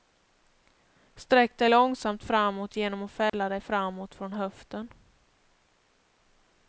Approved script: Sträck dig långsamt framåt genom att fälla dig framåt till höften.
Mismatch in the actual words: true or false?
true